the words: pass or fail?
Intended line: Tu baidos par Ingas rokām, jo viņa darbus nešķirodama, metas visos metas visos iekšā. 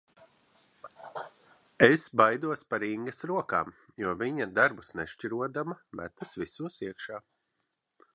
fail